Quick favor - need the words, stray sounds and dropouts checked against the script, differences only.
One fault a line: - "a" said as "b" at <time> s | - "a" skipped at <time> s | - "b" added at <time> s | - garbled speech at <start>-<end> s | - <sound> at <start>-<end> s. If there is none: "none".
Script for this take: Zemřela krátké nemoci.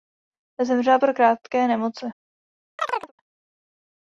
- "po" added at 1.0 s
- chirp at 2.8-3.1 s